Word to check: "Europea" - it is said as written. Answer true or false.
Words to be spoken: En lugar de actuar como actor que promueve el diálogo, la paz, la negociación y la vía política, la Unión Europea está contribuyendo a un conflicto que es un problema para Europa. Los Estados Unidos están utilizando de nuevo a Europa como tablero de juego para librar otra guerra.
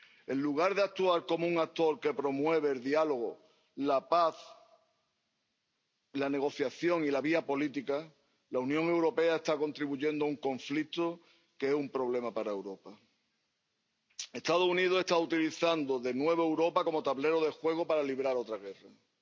true